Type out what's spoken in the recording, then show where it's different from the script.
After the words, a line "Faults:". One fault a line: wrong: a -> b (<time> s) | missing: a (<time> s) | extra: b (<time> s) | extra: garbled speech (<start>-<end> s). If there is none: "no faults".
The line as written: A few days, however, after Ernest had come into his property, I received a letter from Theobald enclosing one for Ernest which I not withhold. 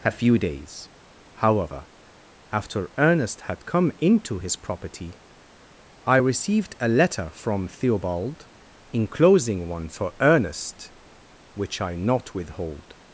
A few days, however, after Ernest had come into his property, I received a letter from Theobald enclosing one for Ernest which I not withhold.
Faults:
no faults